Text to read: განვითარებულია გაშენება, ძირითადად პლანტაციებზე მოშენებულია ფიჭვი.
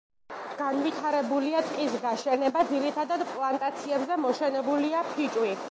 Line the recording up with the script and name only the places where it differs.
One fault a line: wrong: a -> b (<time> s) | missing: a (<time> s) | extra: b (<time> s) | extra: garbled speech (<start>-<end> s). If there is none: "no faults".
extra: ტყის (1.7 s)